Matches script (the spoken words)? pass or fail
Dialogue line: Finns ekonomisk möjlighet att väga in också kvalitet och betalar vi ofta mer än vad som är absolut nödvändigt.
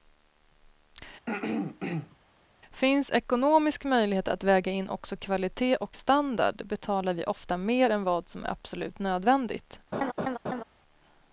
fail